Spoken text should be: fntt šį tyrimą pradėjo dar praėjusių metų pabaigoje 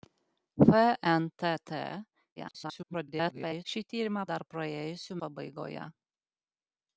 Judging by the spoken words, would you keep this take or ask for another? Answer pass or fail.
fail